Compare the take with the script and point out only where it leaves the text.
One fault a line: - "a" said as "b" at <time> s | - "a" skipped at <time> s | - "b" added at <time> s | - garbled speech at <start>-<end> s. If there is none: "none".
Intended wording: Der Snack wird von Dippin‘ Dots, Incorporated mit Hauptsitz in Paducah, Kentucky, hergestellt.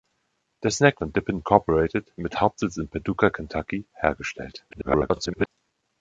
- "wird" skipped at 1.0 s
- "Dots" skipped at 1.4 s
- garbled speech at 4.7-5.5 s